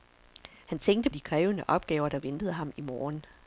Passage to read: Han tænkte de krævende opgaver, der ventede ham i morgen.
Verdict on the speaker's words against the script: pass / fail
pass